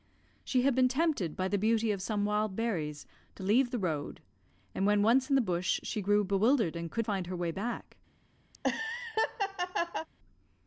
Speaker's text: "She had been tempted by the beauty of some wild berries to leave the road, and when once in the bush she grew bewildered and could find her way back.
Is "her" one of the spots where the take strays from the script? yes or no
no